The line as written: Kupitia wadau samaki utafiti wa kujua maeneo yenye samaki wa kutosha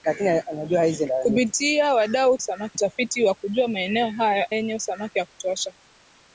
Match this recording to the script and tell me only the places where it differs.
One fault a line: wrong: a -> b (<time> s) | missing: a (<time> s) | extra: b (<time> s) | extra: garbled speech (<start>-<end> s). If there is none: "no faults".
no faults